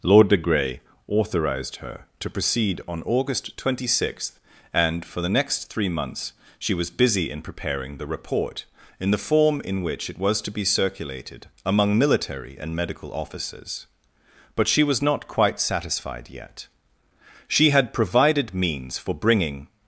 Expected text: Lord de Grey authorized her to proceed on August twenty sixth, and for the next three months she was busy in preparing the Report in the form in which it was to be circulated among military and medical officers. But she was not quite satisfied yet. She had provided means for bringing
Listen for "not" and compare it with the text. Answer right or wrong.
right